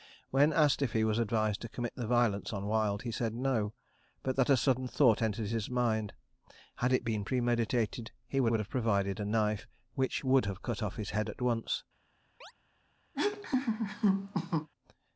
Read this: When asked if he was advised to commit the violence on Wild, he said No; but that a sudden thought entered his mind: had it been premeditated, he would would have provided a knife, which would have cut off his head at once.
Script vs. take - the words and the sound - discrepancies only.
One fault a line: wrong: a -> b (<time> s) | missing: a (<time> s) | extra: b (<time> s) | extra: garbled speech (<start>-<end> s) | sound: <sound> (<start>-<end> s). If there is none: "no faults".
sound: chirp (12.4-12.5 s)
sound: laugh (13.1-14.7 s)